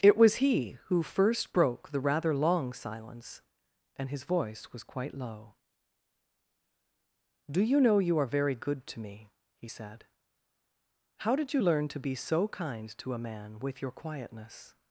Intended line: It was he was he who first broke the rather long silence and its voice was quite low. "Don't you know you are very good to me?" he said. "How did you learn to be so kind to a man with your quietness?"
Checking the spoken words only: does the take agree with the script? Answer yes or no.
no